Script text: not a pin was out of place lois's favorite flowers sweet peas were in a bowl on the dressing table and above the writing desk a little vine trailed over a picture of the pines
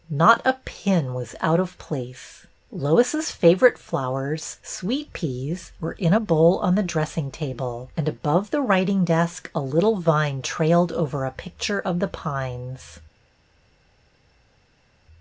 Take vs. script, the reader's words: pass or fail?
pass